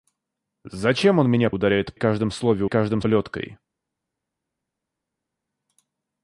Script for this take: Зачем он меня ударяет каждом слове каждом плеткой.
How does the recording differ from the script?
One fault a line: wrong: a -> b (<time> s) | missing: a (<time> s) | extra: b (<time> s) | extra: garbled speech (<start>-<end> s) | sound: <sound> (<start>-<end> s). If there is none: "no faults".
no faults